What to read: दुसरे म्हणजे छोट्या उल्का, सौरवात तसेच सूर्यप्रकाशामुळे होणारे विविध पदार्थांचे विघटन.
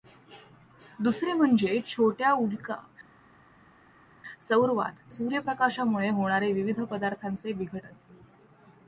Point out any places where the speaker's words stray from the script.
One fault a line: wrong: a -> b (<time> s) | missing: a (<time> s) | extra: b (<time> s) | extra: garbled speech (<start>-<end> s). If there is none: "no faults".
missing: तसेच (5.1 s)